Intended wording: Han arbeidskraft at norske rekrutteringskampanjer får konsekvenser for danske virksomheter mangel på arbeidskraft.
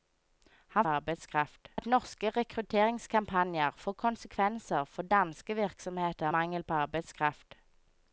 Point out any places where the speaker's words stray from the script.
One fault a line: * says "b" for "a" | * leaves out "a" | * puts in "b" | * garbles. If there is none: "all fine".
all fine